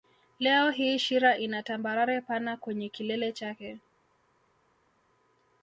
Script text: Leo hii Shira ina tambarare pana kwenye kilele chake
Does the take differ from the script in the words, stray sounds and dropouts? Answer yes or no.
no